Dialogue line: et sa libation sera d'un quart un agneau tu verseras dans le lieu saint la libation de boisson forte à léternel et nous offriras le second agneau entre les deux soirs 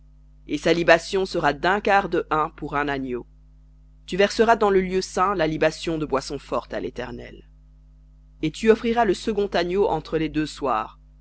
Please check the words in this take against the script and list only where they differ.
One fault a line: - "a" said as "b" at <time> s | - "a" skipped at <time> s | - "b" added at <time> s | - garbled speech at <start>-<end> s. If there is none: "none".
- "de hin pour" added at 2.1 s
- "nous" said as "tu" at 8.5 s